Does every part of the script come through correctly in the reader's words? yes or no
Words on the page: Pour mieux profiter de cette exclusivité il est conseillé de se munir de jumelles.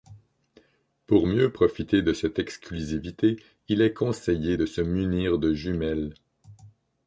yes